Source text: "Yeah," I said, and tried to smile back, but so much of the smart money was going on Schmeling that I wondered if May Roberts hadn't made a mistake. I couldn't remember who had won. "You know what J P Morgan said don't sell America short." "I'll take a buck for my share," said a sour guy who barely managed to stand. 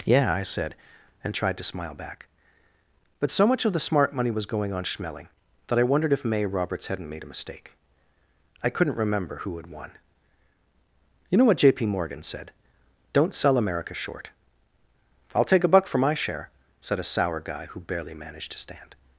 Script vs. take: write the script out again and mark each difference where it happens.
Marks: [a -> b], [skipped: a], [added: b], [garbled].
"Yeah," I said, and tried to smile back, but so much of the smart money was going on Schmeling that I wondered if May Roberts hadn't made a mistake. I couldn't remember who had won. "You know what J P Morgan said don't sell America short." "I'll take a buck for my share," said a sour guy who barely managed to stand.